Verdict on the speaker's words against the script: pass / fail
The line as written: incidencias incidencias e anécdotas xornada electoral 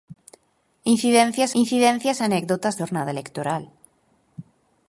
pass